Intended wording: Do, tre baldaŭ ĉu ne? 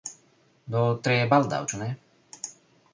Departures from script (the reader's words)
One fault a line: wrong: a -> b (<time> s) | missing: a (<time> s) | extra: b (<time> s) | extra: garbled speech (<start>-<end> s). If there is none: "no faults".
no faults